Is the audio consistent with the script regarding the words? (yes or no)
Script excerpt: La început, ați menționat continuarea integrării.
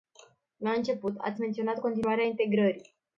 yes